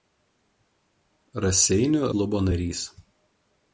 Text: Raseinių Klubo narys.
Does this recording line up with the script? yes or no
yes